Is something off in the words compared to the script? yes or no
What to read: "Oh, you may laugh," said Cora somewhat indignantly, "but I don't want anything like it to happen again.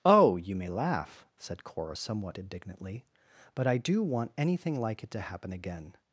yes